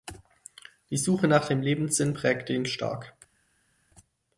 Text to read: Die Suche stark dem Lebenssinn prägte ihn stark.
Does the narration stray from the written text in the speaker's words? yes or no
yes